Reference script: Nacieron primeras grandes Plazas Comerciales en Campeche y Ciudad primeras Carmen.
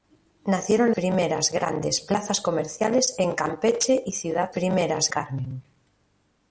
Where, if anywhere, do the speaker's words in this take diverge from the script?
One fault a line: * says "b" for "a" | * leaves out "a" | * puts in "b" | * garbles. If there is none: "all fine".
all fine